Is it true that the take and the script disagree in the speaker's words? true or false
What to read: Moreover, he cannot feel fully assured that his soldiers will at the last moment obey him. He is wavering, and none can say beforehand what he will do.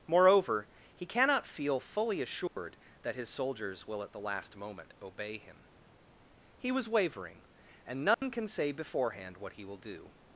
true